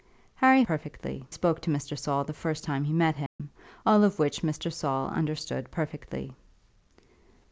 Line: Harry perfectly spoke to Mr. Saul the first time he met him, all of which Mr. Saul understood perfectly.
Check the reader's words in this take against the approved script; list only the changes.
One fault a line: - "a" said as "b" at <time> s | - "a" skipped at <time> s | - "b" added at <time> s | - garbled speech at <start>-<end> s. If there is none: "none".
none